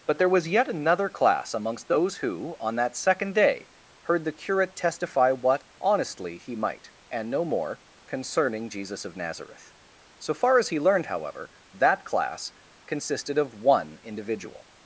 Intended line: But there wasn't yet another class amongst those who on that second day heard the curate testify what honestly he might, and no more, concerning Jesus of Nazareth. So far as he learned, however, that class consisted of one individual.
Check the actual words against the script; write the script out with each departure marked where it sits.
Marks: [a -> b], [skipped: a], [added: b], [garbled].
But there [wasn't -> was] yet another class amongst those who on that second day heard the curate testify what honestly he might, and no more, concerning Jesus of Nazareth. So far as he learned, however, that class consisted of one individual.